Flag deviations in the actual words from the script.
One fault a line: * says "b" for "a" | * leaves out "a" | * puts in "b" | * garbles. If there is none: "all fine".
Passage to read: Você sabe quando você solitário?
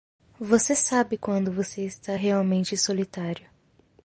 * puts in "está realmente"